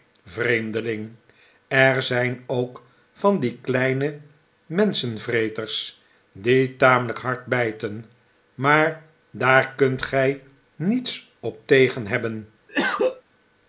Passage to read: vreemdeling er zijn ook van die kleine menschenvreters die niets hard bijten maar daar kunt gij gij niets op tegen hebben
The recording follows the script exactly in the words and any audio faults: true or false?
false